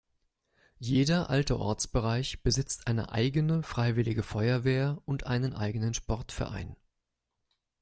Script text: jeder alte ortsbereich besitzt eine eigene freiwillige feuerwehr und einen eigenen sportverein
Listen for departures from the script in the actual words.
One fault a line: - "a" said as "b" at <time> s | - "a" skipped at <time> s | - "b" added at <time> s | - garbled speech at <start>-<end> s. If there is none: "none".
none